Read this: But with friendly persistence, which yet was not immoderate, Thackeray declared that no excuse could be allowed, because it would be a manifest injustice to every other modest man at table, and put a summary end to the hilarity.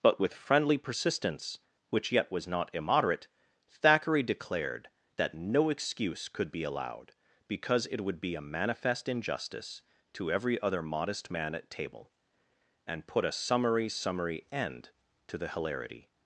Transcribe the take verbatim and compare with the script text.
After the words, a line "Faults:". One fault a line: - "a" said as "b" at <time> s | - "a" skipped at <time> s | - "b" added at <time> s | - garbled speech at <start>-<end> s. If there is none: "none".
But with friendly persistence, which yet was not immoderate, Thackeray declared that no excuse could be allowed, because it would be a manifest injustice to every other modest man at table, and put a summary summary end to the hilarity.
Faults:
- "summary" added at 13.9 s